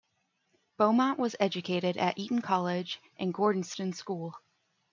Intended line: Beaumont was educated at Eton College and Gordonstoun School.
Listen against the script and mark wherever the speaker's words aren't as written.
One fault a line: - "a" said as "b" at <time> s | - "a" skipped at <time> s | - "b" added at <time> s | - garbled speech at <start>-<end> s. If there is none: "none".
none